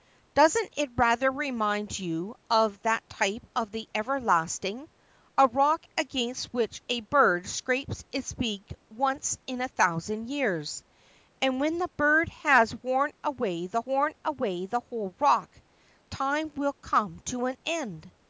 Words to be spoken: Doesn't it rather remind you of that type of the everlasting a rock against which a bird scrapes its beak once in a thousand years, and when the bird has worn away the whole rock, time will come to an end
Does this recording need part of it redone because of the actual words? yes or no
yes